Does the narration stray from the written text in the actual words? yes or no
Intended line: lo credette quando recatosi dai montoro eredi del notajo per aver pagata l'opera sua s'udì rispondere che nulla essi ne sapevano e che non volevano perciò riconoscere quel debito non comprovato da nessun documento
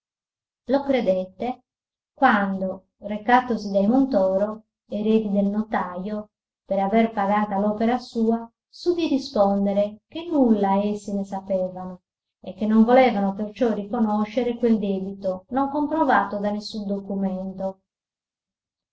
no